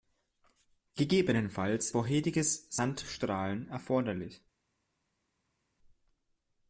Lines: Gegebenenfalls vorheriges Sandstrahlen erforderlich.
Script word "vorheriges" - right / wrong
right